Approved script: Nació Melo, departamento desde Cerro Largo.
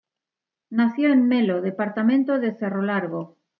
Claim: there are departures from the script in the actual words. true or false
true